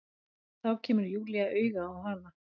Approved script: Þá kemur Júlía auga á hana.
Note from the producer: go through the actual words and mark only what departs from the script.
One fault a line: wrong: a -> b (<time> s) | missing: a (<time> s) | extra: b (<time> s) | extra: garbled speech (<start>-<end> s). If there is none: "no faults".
no faults